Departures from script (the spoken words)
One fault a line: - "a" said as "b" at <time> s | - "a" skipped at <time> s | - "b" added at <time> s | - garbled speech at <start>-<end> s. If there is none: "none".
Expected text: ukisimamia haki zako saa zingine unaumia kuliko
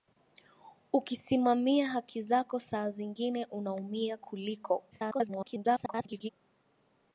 - garbled speech at 4.9-6.3 s